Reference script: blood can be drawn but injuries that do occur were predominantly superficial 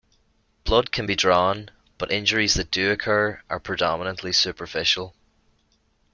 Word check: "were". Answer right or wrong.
wrong